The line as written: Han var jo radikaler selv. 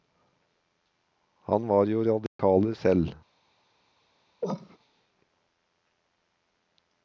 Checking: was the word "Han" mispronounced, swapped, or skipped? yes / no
no